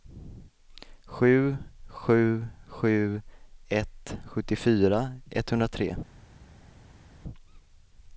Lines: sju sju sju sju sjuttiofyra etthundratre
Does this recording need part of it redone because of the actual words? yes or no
yes